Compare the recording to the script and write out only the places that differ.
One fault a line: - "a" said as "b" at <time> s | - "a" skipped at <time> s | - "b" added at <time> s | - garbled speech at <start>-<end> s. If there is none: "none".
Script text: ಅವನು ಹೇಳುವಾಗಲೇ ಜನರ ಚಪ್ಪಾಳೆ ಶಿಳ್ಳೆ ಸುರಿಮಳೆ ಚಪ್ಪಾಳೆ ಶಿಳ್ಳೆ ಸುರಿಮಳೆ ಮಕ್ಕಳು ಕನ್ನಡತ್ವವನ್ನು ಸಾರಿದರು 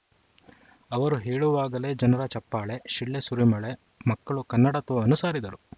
- "ಅವನು" said as "ಅವರು" at 0.9 s
- "ಚಪ್ಪಾಳೆ ಶಿಳ್ಳೆ ಸುರಿಮಳೆ" skipped at 3.7 s